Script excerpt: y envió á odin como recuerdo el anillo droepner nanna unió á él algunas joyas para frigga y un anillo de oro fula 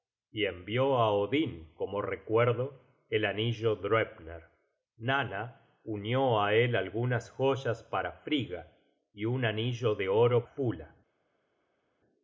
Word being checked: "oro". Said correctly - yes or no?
yes